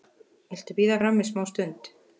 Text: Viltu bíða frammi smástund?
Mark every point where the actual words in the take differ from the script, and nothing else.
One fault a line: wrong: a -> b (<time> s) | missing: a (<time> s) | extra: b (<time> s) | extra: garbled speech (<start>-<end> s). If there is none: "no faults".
no faults